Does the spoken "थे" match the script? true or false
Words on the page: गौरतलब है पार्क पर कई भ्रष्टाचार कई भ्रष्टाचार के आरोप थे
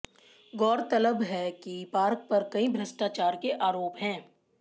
false